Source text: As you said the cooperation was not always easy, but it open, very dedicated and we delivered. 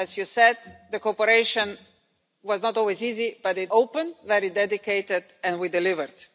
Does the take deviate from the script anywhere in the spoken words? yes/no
no